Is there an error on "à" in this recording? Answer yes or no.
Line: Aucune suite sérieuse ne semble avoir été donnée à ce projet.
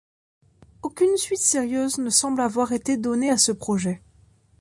no